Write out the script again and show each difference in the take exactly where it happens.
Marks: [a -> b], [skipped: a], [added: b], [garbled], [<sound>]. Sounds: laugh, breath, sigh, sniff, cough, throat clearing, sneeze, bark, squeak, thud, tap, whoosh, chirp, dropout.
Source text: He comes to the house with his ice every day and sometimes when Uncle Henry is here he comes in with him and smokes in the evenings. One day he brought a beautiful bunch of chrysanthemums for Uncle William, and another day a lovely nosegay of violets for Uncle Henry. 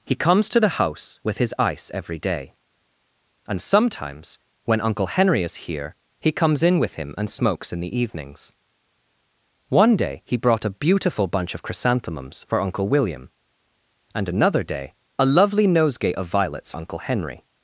He comes to the house with his ice every day and sometimes when Uncle Henry is here he comes in with him and smokes in the evenings. One day he brought a beautiful bunch of chrysanthemums for Uncle William, and another day a lovely nosegay of violets [skipped: for] Uncle Henry.